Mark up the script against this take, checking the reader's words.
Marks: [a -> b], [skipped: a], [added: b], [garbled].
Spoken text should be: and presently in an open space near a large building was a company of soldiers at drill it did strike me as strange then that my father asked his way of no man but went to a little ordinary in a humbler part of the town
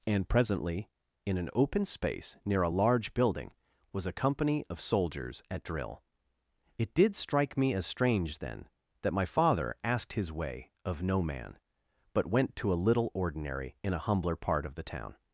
and presently in an open space near a large building was a company of soldiers at drill it did strike me as strange then that my father asked his way of no man but went to a little ordinary in a humbler part of the town